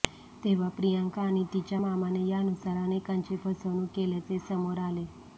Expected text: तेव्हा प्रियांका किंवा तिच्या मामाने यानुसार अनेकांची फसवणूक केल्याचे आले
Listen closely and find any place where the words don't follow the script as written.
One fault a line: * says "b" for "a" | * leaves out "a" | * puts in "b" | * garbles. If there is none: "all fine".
* says "आणि" for "किंवा"
* puts in "समोर"